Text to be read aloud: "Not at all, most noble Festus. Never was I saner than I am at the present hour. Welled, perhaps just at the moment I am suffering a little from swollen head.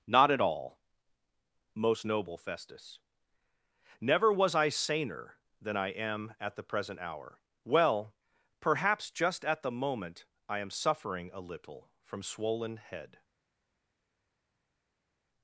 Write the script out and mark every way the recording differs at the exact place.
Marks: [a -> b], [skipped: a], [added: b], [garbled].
"Not at all, most noble Festus. Never was I saner than I am at the present hour. [Welled, -> Well] perhaps just at the moment I am suffering a little from swollen head.